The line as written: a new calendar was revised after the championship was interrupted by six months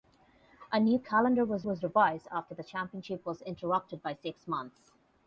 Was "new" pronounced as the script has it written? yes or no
yes